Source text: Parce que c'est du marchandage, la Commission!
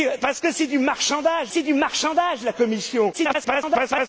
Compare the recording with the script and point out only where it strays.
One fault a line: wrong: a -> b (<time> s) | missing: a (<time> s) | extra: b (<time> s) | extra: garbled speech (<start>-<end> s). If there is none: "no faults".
extra: c'est du marchandage (1.5 s)
extra: garbled speech (3.1-4.1 s)